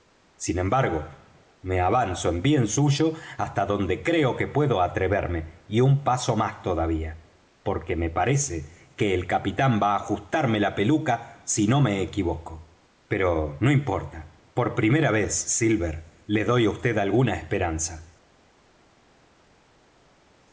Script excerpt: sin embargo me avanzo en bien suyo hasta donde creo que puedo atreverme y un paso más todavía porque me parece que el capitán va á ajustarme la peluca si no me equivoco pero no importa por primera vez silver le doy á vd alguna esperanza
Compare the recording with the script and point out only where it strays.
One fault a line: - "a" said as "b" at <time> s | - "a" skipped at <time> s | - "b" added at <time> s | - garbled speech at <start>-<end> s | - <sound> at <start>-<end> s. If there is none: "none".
none